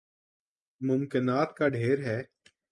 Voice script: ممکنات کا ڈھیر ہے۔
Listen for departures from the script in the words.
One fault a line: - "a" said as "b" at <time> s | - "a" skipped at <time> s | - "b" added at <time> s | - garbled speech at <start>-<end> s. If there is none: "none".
none